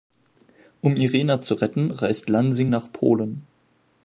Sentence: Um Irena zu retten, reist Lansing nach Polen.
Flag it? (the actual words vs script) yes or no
no